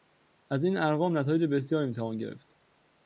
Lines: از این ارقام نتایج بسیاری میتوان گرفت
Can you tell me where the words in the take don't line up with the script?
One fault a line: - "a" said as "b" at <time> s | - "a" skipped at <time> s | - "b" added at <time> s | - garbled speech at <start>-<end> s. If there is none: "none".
none